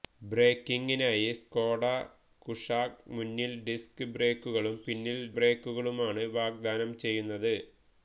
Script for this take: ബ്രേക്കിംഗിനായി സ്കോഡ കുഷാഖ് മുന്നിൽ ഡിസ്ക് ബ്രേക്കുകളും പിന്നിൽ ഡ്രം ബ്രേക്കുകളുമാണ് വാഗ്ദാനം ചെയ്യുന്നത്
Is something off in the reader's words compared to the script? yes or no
yes